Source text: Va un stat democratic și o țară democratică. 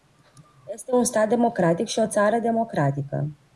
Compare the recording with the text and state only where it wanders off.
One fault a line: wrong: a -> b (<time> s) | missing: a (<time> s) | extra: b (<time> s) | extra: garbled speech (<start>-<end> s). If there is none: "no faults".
wrong: Va -> Este (0.7 s)